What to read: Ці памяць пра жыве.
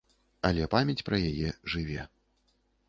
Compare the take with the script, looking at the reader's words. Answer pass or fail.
fail